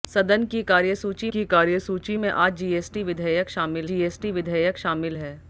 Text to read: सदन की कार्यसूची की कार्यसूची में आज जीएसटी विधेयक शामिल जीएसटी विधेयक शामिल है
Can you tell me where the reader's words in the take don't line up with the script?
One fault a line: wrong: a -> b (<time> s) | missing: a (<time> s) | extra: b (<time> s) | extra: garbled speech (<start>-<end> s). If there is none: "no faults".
no faults